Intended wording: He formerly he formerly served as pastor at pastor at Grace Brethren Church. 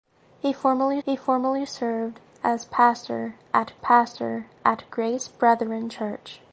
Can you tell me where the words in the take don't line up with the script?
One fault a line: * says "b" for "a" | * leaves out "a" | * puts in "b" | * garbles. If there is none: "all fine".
all fine